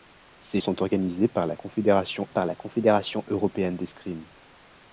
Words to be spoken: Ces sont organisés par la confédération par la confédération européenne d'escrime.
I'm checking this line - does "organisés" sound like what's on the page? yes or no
yes